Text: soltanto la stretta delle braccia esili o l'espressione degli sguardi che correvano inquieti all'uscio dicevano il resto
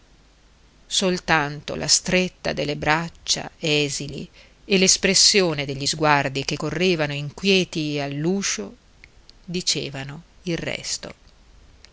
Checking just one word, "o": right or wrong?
wrong